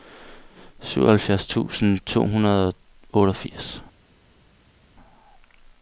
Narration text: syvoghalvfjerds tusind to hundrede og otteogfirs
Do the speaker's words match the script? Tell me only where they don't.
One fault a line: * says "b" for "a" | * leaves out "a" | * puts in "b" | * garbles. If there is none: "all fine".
all fine